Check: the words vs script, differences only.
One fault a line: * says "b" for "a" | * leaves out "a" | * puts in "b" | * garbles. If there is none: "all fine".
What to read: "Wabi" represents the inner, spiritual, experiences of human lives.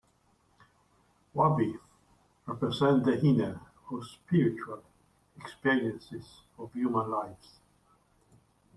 * puts in "or"